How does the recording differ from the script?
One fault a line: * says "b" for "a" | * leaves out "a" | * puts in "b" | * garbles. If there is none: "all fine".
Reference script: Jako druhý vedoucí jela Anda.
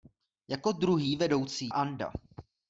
* leaves out "jela"